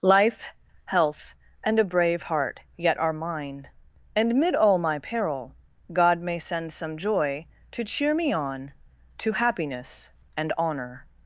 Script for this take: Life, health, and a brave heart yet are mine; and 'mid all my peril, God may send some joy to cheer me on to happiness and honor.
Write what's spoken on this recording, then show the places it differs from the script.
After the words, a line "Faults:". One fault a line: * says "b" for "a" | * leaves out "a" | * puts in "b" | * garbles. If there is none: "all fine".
Life, health, and a brave heart yet are mine; and 'mid all my peril, God may send some joy to cheer me on to happiness and honor.
Faults:
all fine